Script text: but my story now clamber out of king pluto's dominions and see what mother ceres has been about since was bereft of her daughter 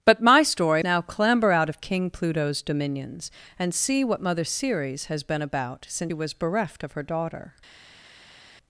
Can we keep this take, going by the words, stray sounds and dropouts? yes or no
yes